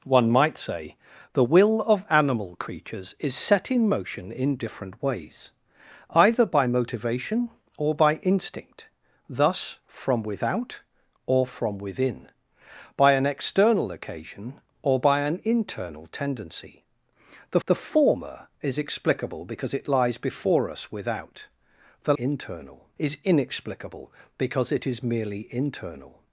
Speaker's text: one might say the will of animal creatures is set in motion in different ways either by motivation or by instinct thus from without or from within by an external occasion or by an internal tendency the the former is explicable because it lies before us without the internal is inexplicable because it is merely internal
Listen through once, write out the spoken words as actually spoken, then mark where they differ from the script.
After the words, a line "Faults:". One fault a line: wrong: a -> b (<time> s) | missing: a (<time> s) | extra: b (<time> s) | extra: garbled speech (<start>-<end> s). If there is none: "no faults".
one might say the will of animal creatures is set in motion in different ways either by motivation or by instinct thus from without or from within by an external occasion or by an internal tendency the the former is explicable because it lies before us without the internal is inexplicable because it is merely internal
Faults:
no faults